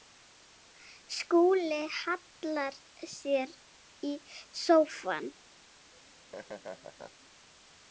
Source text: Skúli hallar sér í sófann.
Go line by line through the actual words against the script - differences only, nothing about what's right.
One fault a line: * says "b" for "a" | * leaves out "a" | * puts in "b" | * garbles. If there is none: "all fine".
all fine